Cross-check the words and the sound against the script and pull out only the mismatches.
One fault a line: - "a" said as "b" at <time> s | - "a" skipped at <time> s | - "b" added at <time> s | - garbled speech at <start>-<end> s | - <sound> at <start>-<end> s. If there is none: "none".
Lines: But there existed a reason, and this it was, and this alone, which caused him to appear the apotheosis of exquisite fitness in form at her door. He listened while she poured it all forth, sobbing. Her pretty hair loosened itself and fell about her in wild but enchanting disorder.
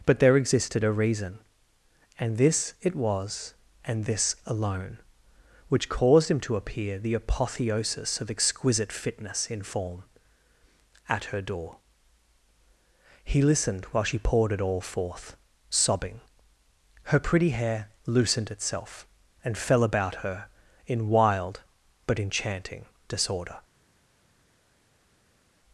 none